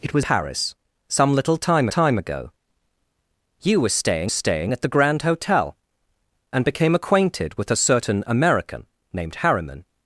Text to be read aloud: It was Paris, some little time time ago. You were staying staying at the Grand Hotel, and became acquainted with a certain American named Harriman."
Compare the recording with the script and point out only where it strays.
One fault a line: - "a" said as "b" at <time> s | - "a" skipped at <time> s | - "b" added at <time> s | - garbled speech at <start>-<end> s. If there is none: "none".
none